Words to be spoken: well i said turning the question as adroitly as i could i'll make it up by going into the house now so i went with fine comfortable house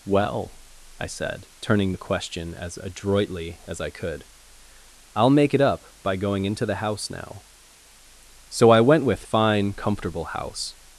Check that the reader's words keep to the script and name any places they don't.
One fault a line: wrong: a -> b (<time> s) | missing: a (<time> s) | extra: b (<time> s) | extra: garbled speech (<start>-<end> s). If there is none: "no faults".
no faults